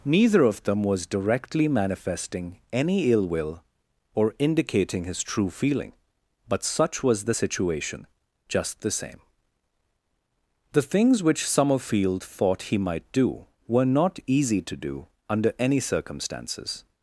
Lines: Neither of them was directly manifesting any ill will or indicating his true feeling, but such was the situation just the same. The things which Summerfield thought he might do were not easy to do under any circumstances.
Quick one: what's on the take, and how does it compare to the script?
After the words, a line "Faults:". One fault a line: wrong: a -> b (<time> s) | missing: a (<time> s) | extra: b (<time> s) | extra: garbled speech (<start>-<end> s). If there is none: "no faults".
Neither of them was directly manifesting any ill will or indicating his true feeling, but such was the situation just the same. The things which Summerfield thought he might do were not easy to do under any circumstances.
Faults:
no faults